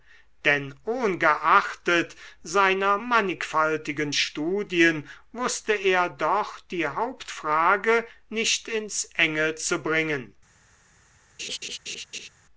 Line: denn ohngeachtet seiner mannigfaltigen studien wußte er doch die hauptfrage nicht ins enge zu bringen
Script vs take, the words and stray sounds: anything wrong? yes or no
yes